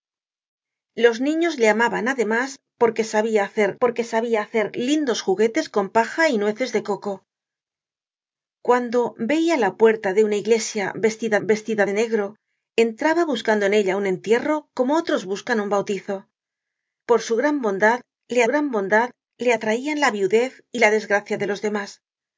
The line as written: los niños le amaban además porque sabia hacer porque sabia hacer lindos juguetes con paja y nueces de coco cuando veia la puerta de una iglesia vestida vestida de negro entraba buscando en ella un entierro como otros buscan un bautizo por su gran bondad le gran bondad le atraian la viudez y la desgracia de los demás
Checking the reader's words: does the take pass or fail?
pass